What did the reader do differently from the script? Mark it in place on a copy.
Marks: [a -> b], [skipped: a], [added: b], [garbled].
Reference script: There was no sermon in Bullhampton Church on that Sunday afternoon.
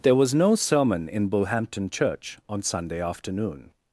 There was no sermon in Bullhampton Church on [skipped: that] Sunday afternoon.